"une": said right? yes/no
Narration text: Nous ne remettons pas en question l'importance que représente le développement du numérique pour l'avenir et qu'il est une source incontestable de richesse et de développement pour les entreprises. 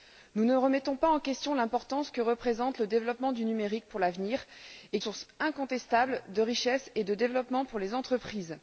no